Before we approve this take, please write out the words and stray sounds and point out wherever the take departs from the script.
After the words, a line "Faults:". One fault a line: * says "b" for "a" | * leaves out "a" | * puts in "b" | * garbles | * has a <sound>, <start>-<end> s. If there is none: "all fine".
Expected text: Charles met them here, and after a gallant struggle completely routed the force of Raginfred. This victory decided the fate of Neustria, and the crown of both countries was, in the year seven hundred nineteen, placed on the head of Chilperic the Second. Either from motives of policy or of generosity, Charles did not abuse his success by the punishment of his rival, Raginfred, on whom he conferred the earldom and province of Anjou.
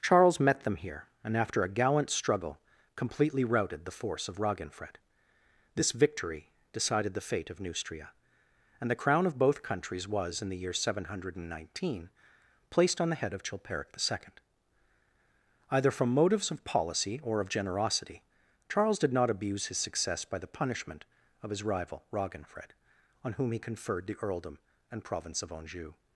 Charles met them here, and after a gallant struggle completely routed the force of Raginfred. This victory decided the fate of Neustria, and the crown of both countries was, in the year seven hundred nineteen, placed on the head of Chilperic the Second. Either from motives of policy or of generosity, Charles did not abuse his success by the punishment of his rival, Raginfred, on whom he conferred the earldom and province of Anjou.
Faults:
all fine